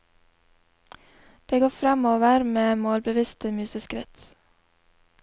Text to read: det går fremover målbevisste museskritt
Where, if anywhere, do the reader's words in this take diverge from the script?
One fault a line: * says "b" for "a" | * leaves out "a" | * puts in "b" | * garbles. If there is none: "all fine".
* puts in "med"